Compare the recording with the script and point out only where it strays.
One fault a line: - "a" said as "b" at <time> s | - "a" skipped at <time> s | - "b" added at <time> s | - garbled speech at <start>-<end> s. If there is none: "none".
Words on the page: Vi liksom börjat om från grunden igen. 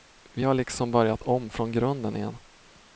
- "har" added at 0.4 s